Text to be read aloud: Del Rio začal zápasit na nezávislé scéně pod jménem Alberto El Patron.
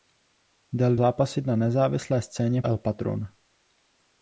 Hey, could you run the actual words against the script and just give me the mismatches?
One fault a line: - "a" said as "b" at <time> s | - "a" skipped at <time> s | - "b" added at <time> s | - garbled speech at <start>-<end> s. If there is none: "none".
- "Rio začal" skipped at 1.0 s
- "pod jménem Alberto" skipped at 2.6 s